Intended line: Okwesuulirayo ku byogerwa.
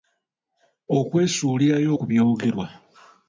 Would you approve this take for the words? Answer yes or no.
yes